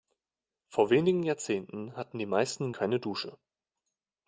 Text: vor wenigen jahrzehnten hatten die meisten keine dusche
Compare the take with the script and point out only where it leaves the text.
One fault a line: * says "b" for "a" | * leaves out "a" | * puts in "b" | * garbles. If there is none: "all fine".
all fine